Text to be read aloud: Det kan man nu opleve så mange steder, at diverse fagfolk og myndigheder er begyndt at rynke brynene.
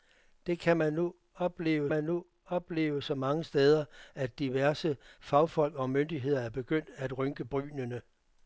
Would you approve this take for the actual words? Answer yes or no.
no